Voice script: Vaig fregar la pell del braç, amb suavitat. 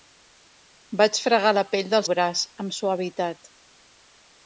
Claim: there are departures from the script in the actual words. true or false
false